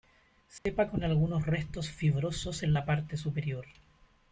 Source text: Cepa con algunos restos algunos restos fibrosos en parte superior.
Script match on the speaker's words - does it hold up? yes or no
no